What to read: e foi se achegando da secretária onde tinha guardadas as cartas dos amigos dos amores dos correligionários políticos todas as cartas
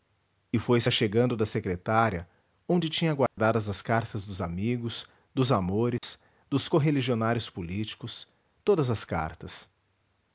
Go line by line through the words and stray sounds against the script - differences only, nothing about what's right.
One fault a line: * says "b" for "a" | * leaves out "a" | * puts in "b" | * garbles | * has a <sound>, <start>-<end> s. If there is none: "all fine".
* has a dropout, 3.3-3.4 s
* has a dropout, 6.0-6.0 s